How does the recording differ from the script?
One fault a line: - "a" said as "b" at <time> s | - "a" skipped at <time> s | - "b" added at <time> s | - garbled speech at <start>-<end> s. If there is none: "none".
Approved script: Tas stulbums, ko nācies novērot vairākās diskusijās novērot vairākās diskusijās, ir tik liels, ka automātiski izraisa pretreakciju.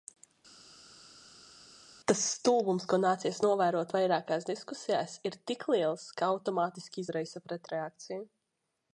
- "novērot vairākās diskusijās" skipped at 5.2 s